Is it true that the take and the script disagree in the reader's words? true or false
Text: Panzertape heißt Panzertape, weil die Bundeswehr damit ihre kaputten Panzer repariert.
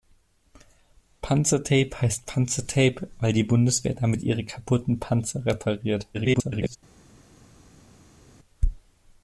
true